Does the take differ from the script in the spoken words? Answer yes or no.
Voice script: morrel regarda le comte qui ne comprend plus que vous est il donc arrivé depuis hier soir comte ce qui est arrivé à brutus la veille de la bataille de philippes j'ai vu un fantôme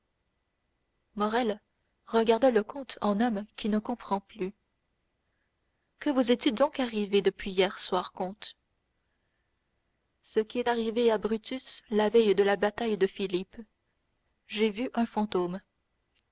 yes